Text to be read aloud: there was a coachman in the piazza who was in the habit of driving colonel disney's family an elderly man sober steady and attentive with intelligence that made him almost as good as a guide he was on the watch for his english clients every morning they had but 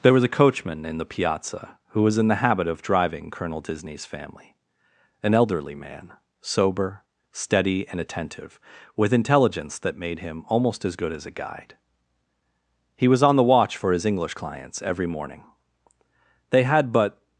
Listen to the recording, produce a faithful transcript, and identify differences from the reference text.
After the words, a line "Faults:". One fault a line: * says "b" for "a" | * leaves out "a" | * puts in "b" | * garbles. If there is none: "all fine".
there was a coachman in the piazza who was in the habit of driving colonel disney's family an elderly man sober steady and attentive with intelligence that made him almost as good as a guide he was on the watch for his english clients every morning they had but
Faults:
all fine